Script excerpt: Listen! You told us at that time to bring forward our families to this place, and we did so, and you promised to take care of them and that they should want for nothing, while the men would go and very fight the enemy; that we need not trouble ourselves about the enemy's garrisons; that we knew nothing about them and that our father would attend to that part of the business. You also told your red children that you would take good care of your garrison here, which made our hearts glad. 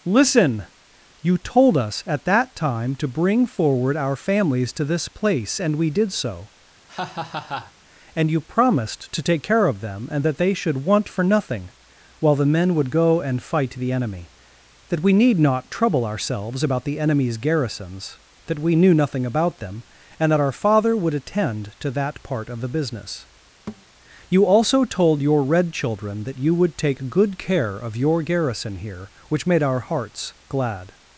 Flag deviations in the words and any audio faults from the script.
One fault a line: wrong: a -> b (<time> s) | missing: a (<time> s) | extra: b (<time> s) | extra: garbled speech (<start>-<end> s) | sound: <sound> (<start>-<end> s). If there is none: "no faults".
sound: laugh (6.9-7.7 s)
missing: very (13.4 s)
sound: thud (23.7-23.9 s)